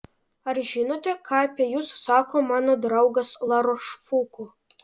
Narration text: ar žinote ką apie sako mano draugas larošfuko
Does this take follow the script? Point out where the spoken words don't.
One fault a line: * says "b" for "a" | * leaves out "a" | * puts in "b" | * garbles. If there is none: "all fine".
* puts in "jus"